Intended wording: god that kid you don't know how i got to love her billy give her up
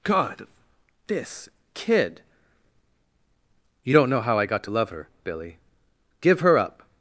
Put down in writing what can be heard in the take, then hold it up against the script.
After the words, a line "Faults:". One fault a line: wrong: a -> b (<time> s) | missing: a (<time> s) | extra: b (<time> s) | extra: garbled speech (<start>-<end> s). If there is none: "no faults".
god this kid you don't know how i got to love her billy give her up
Faults:
wrong: that -> this (1.1 s)